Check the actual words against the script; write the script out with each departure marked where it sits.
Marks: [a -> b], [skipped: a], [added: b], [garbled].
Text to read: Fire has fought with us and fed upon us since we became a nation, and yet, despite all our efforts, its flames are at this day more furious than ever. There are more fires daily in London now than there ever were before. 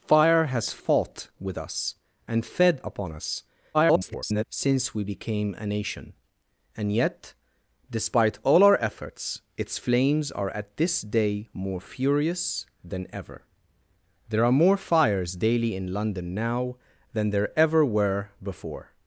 Fire has fought with us and fed upon us [garbled] since we became a nation, and yet, despite all our efforts, its flames are at this day more furious than ever. There are more fires daily in London now than there ever were before.